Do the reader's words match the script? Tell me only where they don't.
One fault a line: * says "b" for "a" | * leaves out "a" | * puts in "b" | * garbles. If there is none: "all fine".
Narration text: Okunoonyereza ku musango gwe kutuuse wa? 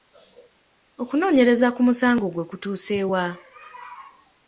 all fine